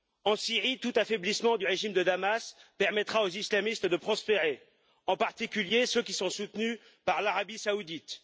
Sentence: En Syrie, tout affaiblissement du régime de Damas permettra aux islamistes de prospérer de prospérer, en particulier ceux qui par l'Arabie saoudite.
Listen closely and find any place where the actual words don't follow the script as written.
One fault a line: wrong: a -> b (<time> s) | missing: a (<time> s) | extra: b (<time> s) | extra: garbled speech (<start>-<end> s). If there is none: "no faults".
missing: de prospérer (4.6 s)
extra: sont soutenus (6.1 s)